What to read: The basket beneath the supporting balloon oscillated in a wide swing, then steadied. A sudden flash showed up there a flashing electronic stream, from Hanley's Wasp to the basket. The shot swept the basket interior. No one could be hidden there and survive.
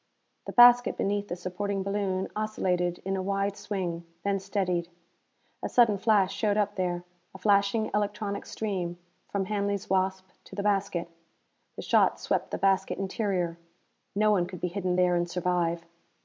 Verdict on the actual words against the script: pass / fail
pass